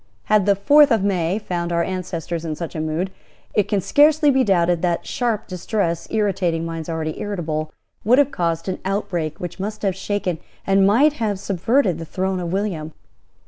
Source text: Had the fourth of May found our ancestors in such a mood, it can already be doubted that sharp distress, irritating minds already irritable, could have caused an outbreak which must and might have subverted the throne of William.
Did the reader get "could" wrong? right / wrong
wrong